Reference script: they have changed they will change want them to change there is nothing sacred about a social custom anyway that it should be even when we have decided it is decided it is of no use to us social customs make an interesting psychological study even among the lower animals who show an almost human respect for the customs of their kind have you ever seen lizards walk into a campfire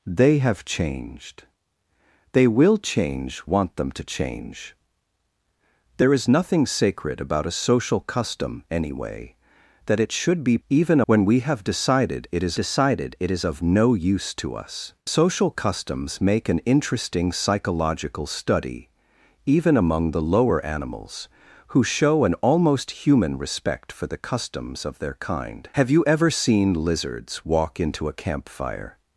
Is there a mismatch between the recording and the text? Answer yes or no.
no